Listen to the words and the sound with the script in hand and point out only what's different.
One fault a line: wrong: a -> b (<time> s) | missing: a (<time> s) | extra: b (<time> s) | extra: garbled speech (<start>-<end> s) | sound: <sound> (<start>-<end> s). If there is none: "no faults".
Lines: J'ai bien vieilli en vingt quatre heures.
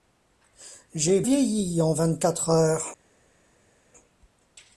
missing: bien (1.2 s)